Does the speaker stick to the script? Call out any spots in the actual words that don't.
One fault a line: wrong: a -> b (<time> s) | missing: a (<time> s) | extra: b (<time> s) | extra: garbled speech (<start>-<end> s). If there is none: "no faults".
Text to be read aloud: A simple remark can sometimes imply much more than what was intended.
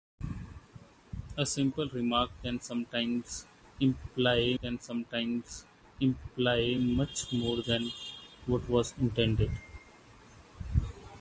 extra: can sometimes imply (4.6 s)